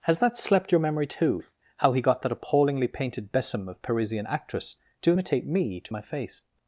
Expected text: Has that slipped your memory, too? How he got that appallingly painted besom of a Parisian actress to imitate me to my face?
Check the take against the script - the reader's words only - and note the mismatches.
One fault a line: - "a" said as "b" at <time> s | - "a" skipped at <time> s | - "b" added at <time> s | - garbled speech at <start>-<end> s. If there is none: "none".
- "slipped" said as "slept" at 0.3 s
- "a" skipped at 3.8 s